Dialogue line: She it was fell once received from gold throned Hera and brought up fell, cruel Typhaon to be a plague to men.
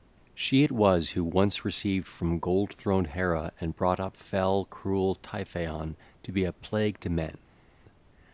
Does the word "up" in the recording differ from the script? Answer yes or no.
no